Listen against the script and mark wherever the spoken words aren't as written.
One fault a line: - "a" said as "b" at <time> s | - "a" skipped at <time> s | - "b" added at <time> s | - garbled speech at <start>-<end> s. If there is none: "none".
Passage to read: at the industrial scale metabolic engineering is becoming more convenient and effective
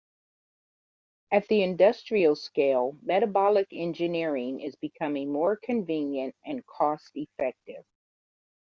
- "cost" added at 6.7 s